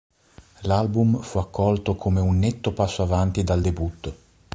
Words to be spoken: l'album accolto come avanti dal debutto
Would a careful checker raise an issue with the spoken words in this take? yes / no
yes